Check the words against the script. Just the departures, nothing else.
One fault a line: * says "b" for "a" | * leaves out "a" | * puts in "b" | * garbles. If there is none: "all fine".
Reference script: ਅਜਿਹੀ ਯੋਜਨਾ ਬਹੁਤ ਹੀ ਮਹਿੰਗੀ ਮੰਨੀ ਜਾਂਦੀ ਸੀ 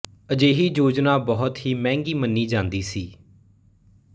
all fine